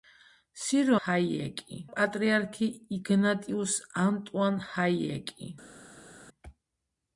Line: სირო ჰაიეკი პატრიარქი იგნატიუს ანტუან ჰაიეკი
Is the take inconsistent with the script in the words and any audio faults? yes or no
no